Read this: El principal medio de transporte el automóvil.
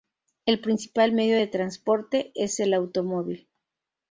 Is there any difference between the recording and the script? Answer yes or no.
yes